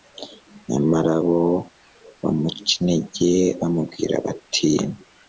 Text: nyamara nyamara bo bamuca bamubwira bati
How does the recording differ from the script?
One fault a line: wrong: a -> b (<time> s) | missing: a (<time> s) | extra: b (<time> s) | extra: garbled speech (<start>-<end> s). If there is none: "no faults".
missing: nyamara (1.1 s)
extra: intege (2.8 s)